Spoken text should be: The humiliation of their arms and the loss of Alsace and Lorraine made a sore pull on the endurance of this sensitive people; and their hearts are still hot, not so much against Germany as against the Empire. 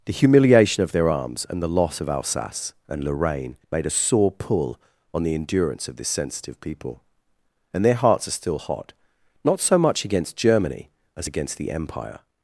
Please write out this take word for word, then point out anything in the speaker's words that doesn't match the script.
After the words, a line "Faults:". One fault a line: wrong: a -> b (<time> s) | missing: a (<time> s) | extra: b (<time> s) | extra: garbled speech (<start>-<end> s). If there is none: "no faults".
The humiliation of their arms and the loss of Alsace and Lorraine made a sore pull on the endurance of this sensitive people; and their hearts are still hot, not so much against Germany as against the Empire.
Faults:
no faults